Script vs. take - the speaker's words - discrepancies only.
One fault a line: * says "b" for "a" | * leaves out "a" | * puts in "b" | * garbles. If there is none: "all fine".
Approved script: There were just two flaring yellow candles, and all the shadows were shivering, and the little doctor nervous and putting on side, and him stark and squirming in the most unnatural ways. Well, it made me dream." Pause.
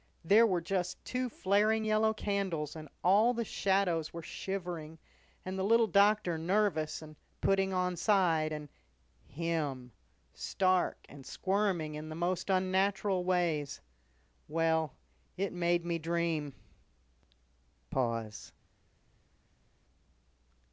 all fine